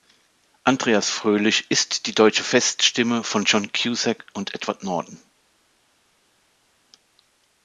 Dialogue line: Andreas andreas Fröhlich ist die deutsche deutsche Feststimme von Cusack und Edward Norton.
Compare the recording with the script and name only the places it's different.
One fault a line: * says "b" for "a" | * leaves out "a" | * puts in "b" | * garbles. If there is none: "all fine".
* leaves out "andreas"
* leaves out "deutsche"
* puts in "John"